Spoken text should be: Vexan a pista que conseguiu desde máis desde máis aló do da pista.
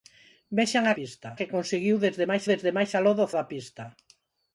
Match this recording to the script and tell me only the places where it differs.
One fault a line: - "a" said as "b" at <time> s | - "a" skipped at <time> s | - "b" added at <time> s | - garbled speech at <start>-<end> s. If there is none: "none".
none